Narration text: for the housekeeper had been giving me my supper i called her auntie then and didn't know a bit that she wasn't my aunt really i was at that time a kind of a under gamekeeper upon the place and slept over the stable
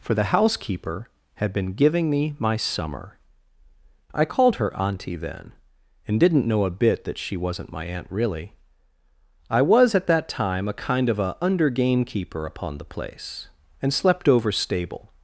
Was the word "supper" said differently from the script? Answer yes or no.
yes